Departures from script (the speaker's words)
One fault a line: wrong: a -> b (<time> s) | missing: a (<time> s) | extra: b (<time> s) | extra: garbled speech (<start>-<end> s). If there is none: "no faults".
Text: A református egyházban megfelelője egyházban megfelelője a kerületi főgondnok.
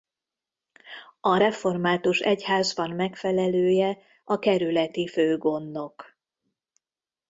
missing: egyházban megfelelője (4.0 s)